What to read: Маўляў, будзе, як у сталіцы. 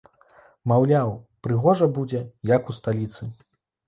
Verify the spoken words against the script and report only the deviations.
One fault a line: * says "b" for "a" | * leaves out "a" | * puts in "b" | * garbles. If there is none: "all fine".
* puts in "прыгожа"